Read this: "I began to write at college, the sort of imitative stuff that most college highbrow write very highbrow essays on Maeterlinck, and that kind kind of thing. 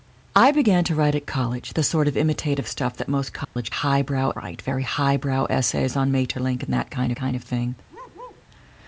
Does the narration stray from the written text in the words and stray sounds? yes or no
yes